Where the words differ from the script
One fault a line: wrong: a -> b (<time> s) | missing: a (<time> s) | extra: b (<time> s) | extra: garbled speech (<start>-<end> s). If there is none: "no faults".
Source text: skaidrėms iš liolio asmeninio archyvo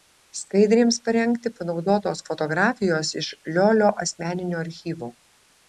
extra: parengti panaudotos fotografijos (1.1 s)